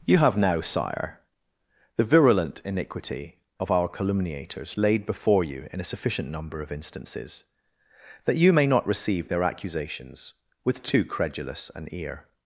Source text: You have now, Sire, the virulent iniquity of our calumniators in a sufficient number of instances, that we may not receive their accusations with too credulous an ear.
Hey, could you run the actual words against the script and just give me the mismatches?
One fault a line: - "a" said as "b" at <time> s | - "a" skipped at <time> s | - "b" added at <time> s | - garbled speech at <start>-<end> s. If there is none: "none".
- "laid before you" added at 4.8 s
- "we" said as "you" at 8.3 s